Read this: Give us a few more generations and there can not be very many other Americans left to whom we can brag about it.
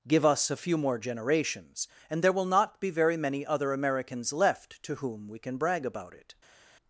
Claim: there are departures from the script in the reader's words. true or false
true